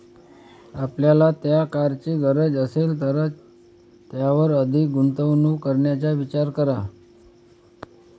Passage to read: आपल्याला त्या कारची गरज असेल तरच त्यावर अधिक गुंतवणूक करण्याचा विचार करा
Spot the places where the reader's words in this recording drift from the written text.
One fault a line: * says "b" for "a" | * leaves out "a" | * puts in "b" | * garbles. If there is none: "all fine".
all fine